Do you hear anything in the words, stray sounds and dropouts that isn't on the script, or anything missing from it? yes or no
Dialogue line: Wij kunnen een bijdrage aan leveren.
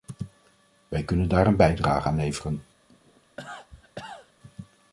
yes